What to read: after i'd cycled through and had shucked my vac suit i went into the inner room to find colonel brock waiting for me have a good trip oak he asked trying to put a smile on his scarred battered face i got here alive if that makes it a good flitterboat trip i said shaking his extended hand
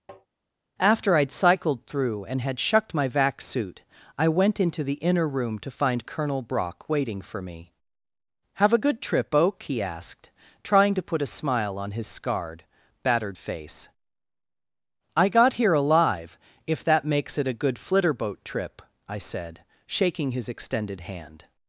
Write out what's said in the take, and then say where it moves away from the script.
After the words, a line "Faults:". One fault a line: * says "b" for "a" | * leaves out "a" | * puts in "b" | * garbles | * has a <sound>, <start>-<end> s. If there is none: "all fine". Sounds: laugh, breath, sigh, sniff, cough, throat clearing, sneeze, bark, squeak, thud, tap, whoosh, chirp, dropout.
after i'd cycled through and had shucked my vac suit i went into the inner room to find colonel brock waiting for me have a good trip oak he asked trying to put a smile on his scarred battered face i got here alive if that makes it a good flitterboat trip i said shaking his extended hand
Faults:
* has a tap, 0.1-0.3 s